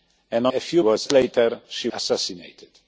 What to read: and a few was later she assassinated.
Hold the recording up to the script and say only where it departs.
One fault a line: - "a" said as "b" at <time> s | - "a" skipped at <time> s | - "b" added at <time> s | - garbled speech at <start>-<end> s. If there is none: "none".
none